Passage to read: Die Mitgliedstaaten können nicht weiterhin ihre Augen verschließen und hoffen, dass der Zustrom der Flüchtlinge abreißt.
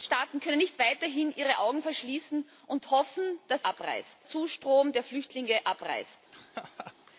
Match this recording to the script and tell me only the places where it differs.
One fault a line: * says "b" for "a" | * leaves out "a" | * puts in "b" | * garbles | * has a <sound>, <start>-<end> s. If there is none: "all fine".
* says "abreißt" for "der"
* has a laugh, 6.3-6.9 s